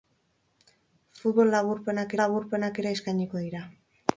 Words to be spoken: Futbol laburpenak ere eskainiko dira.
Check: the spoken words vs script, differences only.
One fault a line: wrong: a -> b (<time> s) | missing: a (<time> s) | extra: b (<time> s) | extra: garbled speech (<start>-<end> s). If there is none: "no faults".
extra: laburpenak (2.2 s)